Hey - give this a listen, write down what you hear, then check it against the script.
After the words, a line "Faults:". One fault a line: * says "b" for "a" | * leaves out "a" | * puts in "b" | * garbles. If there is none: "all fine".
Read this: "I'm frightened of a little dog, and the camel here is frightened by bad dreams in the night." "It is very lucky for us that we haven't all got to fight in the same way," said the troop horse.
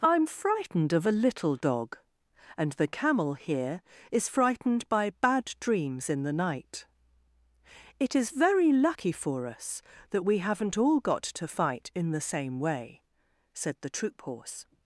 "I'm frightened of a little dog, and the camel here is frightened by bad dreams in the night." "It is very lucky for us that we haven't all got to fight in the same way," said the troop horse.
Faults:
all fine